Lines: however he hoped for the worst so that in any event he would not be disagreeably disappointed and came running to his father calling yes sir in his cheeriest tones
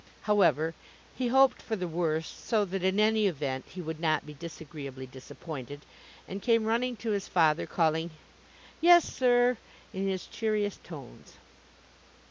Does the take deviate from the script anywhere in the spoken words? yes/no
no